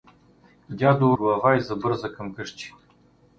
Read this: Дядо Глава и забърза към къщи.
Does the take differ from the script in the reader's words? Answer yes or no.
no